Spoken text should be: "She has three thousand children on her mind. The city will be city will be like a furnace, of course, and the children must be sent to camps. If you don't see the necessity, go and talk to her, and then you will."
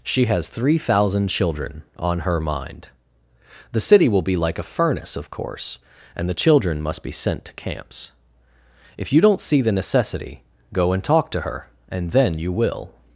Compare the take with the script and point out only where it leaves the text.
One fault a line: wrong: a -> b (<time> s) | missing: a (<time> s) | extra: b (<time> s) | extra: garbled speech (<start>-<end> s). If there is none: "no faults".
missing: city will be (4.3 s)